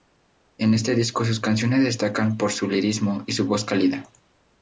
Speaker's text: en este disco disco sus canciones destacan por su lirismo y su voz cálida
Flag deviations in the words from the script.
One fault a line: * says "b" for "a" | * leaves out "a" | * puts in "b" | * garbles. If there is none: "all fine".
* leaves out "disco"